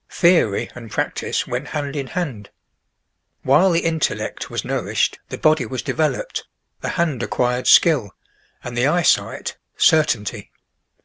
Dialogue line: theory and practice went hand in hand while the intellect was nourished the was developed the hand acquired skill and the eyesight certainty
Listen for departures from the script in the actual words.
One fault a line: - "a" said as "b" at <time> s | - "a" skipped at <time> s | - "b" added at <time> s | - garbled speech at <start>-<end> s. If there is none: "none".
- "body" added at 5.4 s